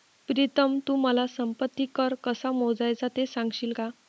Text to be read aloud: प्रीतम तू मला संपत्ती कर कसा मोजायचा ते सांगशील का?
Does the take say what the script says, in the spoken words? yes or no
yes